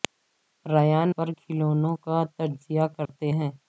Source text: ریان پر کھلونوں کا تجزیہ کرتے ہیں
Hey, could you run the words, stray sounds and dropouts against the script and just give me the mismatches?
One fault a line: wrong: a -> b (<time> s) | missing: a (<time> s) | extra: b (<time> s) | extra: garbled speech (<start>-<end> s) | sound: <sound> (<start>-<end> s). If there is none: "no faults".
sound: dropout (3.1-3.1 s)